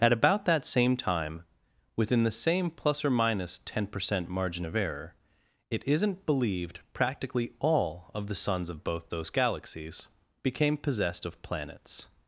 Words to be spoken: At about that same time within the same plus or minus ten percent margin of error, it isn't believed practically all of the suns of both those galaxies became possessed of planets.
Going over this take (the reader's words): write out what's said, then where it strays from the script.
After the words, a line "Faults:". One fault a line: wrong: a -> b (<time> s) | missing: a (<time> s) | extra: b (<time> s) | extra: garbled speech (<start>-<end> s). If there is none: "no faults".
At about that same time within the same plus or minus ten percent margin of error, it isn't believed practically all of the suns of both those galaxies became possessed of planets.
Faults:
no faults